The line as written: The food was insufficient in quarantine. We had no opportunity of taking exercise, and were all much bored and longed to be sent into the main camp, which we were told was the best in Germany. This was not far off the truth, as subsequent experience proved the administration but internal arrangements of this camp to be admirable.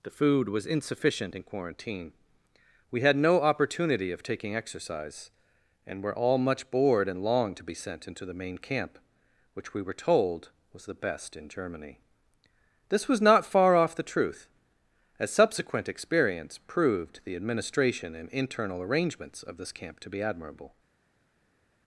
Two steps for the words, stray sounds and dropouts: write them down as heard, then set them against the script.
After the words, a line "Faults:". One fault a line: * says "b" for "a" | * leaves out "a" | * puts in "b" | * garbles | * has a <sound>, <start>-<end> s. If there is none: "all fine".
The food was insufficient in quarantine. We had no opportunity of taking exercise, and were all much bored and longed to be sent into the main camp, which we were told was the best in Germany. This was not far off the truth, as subsequent experience proved the administration and internal arrangements of this camp to be admirable.
Faults:
* says "and" for "but"